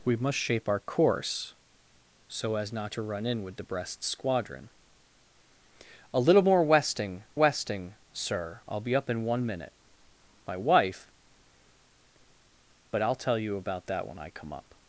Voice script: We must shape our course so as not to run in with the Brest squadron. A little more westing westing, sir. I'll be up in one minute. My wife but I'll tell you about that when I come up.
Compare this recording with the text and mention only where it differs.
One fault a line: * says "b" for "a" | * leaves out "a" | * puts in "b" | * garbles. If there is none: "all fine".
all fine